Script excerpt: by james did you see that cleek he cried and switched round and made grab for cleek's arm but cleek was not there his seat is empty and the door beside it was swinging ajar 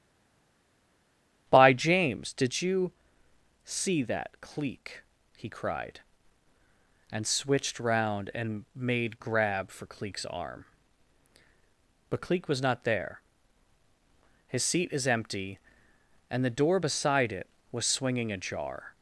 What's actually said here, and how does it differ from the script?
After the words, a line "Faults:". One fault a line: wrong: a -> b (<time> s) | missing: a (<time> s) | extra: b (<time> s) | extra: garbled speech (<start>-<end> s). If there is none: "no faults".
by james did you see that cleek he cried and switched round and made grab for cleek's arm but cleek was not there his seat is empty and the door beside it was swinging ajar
Faults:
no faults